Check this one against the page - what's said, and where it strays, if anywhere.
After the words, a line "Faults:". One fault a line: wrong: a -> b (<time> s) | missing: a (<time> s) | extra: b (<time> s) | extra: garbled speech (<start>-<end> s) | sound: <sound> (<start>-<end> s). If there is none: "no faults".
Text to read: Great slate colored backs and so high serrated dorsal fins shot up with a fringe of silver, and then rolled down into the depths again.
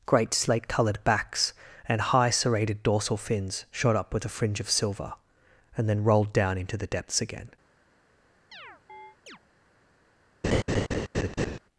Great slate colored backs and high serrated dorsal fins shot up with a fringe of silver, and then rolled down into the depths again.
Faults:
missing: so (2.0 s)
sound: chirp (8.5-9.4 s)
sound: laugh (10.4-11.6 s)